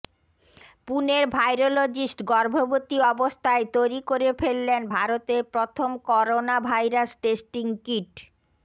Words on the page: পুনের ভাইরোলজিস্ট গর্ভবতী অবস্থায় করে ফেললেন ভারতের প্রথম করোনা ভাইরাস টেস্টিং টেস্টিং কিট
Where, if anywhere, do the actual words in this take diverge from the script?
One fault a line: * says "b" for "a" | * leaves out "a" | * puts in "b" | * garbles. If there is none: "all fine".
* puts in "তৈরি"
* leaves out "টেস্টিং"